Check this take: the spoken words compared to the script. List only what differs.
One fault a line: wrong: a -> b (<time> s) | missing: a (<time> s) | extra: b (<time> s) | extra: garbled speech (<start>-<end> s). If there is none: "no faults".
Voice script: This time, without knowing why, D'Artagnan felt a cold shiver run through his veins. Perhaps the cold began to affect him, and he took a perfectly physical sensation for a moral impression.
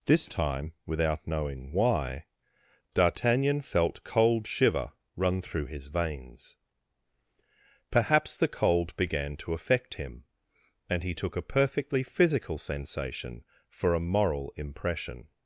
missing: a (4.0 s)